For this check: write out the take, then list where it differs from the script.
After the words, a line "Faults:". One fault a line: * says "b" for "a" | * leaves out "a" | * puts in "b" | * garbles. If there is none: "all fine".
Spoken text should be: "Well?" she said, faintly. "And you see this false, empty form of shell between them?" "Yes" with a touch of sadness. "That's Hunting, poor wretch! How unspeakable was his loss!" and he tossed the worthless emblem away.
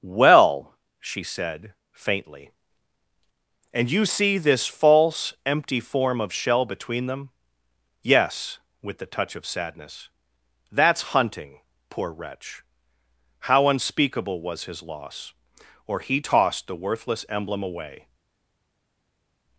"Well?" she said, faintly. "And you see this false, empty form of shell between them?" "Yes" with the touch of sadness. "That's Hunting, poor wretch! How unspeakable was his loss!" or he tossed the worthless emblem away.
Faults:
* says "the" for "a"
* says "or" for "and"